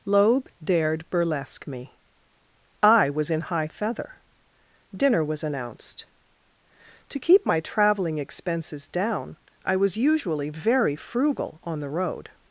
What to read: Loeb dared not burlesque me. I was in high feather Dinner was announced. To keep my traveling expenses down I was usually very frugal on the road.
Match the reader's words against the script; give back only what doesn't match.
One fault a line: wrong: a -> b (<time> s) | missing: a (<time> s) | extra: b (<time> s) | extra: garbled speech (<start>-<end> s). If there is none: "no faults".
missing: not (1.1 s)